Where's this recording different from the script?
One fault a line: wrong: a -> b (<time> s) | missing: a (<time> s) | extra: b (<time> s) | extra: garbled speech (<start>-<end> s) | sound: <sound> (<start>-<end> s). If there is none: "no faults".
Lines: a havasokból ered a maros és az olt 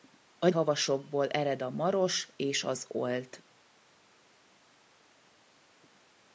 no faults